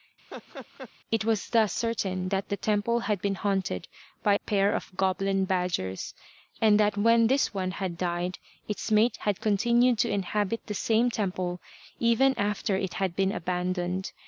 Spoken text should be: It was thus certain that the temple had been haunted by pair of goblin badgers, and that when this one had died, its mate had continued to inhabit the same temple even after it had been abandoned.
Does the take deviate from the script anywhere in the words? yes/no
no